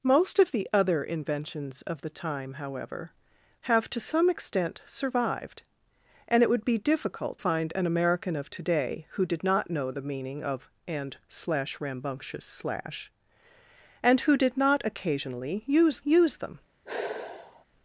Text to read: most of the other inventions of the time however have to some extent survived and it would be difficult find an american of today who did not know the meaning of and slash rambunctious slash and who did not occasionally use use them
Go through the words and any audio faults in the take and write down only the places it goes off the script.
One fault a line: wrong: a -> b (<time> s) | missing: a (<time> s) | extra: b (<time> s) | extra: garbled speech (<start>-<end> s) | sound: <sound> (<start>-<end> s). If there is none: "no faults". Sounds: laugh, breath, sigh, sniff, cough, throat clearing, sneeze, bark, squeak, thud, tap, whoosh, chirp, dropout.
sound: sigh (16.8-17.6 s)